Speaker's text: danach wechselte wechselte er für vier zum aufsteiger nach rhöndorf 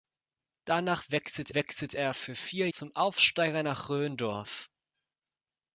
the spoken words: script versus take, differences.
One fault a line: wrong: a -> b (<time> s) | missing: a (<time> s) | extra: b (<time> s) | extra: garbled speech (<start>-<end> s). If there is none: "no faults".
no faults